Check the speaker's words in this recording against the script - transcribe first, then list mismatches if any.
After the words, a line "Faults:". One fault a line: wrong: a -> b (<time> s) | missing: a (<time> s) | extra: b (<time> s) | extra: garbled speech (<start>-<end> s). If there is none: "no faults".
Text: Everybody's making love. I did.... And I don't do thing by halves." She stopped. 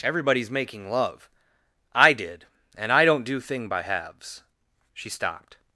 Everybody's making love. I did.... And I don't do thing by halves." She stopped.
Faults:
no faults